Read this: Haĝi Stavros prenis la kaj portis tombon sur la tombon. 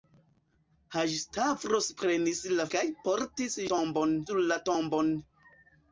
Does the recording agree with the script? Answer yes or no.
yes